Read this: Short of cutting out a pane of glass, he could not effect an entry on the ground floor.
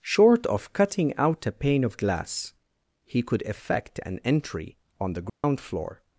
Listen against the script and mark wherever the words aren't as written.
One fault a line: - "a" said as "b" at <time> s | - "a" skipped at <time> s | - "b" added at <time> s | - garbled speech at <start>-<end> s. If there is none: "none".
- "not" skipped at 3.4 s